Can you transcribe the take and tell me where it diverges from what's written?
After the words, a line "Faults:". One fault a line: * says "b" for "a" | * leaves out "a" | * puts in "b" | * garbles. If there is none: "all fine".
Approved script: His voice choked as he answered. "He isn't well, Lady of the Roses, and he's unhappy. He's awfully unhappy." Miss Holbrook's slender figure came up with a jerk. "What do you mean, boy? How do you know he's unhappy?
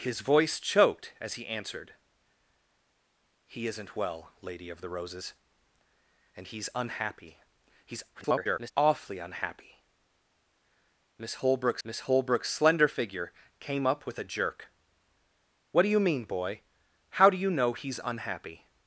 His voice choked as he answered. "He isn't well, Lady of the Roses, and he's unhappy. He's [garbled] awfully unhappy." Miss Holbrook's miss Holbrook's slender figure came up with a jerk. "What do you mean, boy? How do you know he's unhappy?
Faults:
* garbles
* puts in "miss Holbrook's"